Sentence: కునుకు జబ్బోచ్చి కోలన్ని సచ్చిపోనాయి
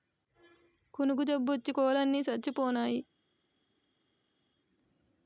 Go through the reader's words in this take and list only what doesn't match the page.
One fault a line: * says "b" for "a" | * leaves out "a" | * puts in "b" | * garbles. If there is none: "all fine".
all fine